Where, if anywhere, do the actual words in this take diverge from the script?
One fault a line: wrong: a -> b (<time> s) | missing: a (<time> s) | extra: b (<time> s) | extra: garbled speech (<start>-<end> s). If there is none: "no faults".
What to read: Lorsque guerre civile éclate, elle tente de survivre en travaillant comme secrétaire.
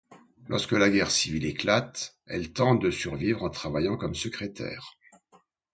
extra: la (0.7 s)